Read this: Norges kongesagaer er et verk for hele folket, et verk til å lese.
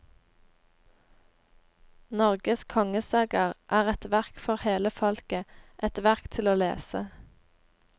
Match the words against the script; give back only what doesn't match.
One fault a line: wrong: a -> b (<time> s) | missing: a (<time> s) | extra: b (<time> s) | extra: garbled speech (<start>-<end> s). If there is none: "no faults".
no faults